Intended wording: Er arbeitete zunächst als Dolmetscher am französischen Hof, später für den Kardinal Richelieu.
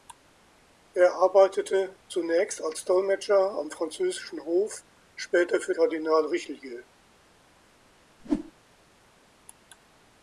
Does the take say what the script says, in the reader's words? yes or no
no